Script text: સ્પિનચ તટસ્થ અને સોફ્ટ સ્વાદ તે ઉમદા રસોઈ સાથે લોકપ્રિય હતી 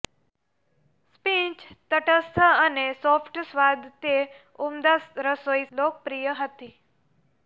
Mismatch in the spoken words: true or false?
true